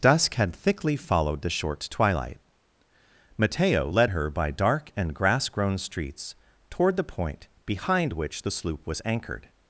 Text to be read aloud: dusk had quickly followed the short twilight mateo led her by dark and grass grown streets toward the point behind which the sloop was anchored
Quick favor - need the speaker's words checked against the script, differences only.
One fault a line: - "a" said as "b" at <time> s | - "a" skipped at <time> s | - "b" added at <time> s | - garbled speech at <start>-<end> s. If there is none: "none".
- "quickly" said as "thickly" at 0.6 s